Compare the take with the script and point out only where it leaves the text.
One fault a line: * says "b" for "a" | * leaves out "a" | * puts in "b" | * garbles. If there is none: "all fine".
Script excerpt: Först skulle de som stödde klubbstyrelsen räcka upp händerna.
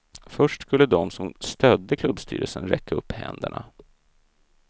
all fine